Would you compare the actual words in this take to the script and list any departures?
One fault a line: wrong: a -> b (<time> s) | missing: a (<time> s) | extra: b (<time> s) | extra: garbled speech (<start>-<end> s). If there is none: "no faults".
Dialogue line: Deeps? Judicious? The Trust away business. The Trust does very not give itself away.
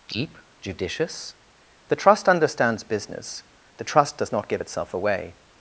wrong: Deeps -> Deep (0.1 s)
wrong: away -> understands (2.3 s)
missing: very (4.3 s)